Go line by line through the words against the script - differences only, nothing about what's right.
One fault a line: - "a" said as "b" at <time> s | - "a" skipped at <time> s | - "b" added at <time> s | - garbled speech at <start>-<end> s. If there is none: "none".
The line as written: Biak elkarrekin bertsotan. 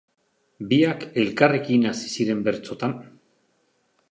- "hasi ziren" added at 1.9 s